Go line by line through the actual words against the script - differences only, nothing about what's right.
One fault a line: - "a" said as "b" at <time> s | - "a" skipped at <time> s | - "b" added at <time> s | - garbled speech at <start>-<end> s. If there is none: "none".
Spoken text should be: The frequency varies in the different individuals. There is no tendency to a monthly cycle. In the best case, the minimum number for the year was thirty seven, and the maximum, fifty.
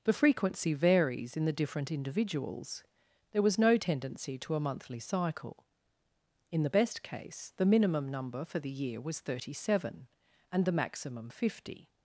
- "is" said as "was" at 3.4 s